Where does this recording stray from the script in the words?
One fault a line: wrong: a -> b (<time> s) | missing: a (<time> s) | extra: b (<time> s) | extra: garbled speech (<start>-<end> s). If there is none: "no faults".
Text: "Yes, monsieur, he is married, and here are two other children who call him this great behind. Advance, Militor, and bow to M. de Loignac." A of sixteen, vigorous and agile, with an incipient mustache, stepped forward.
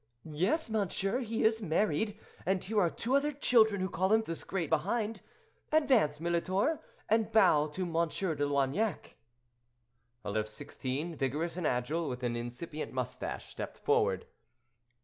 no faults